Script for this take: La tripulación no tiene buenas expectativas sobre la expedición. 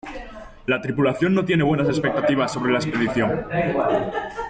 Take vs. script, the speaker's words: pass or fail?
pass